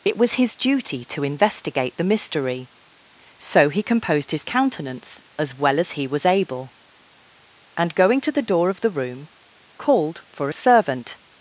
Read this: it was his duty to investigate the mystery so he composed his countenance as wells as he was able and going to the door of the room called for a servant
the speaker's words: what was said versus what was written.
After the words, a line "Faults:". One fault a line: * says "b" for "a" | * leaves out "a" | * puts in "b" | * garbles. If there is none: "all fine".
it was his duty to investigate the mystery so he composed his countenance as well as he was able and going to the door of the room called for a servant
Faults:
* says "well" for "wells"